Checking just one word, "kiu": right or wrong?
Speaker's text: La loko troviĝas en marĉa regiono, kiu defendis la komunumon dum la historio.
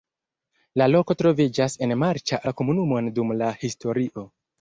wrong